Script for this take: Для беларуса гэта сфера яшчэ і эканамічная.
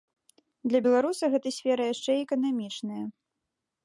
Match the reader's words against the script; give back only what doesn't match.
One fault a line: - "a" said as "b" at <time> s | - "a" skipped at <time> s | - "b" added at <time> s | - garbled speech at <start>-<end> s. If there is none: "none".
none